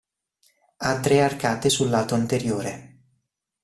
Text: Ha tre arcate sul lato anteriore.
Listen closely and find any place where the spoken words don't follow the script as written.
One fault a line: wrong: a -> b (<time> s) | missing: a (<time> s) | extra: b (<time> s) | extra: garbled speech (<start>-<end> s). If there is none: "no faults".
no faults